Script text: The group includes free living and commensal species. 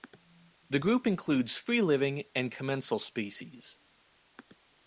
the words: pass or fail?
pass